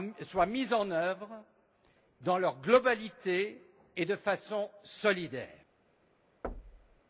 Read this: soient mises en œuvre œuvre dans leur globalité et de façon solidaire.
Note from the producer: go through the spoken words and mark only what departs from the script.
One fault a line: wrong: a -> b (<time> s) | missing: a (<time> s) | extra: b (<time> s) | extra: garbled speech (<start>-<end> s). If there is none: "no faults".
missing: œuvre (1.4 s)